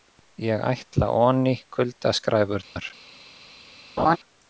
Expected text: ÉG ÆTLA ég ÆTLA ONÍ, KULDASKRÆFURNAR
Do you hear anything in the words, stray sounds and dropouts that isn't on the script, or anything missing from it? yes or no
yes